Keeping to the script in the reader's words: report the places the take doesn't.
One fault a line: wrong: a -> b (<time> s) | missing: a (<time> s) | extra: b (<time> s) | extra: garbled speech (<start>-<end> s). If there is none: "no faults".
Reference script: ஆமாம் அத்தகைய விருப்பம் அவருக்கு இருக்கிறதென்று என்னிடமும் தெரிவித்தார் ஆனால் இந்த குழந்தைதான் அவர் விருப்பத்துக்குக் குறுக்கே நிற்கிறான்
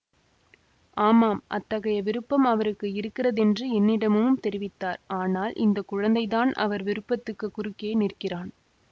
no faults